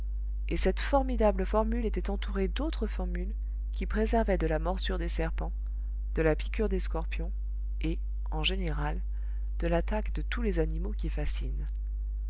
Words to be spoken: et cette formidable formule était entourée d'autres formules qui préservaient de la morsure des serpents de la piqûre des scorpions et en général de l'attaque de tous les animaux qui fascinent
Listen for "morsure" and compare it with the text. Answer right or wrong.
right